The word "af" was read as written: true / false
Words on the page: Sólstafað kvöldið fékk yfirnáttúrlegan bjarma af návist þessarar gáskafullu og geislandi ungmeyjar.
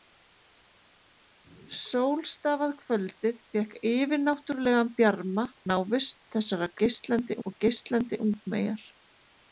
false